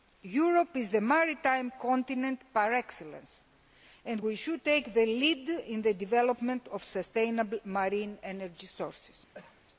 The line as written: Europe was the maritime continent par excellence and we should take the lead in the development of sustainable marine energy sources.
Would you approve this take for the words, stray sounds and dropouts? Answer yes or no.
no